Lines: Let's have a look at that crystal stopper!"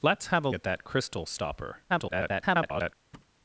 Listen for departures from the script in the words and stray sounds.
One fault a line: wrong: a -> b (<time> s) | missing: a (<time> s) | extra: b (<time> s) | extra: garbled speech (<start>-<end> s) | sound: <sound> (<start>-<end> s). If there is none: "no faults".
missing: look (0.5 s)
extra: garbled speech (1.9-2.9 s)
sound: thud (3.1-3.4 s)